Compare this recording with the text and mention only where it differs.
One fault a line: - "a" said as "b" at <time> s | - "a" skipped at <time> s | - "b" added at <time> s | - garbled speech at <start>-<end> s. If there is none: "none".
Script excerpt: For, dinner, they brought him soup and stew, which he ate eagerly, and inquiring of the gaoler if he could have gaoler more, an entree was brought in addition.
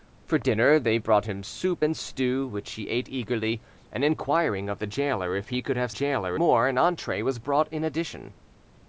none